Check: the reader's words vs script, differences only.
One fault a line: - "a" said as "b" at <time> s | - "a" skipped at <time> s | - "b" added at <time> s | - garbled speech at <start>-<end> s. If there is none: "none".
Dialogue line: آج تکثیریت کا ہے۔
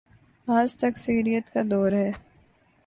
- "دور" added at 1.7 s